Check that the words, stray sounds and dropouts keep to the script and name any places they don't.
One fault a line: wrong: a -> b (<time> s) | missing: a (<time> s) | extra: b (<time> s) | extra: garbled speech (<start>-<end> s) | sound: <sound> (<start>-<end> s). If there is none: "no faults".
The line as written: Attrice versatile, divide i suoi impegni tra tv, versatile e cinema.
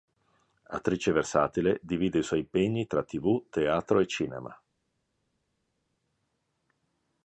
wrong: versatile -> teatro (3.5 s)